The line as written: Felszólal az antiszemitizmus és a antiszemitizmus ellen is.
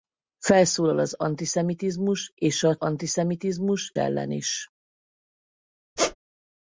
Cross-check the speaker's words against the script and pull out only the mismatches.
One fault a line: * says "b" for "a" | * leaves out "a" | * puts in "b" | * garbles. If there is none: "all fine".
all fine